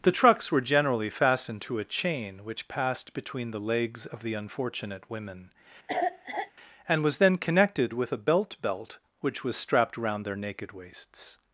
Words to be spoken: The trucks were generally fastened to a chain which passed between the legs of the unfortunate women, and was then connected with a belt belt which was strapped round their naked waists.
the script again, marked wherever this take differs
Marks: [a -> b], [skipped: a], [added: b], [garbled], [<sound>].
The trucks were generally fastened to a chain which passed between the legs of the unfortunate women, [cough] and was then connected with a belt belt which was strapped round their naked waists.